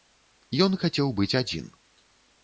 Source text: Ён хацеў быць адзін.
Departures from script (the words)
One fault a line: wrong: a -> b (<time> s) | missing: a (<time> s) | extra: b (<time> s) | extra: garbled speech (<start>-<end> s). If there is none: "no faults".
no faults